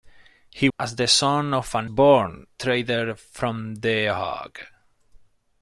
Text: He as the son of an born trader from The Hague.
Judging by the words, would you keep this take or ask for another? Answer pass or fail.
pass